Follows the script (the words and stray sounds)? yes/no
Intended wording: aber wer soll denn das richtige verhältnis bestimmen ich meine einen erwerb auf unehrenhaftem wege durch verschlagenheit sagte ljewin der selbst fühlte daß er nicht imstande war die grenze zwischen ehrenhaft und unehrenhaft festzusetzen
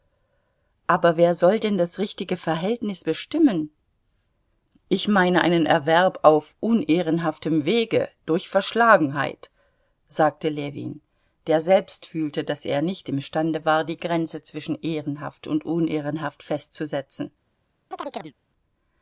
no